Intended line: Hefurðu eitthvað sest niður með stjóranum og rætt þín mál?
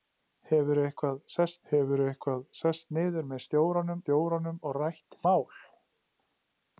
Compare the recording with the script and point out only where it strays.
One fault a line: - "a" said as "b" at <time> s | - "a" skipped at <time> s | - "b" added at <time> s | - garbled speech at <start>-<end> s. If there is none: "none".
- "hefurðu eitthvað sest" added at 1.7 s
- "stjóranum" added at 4.0 s
- "þín" skipped at 5.2 s